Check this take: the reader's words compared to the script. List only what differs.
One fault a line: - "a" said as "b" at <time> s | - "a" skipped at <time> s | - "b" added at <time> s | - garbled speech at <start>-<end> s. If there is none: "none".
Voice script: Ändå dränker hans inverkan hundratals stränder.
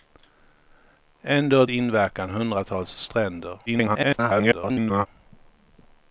- "dränker hans" skipped at 1.6 s
- garbled speech at 3.7-5.1 s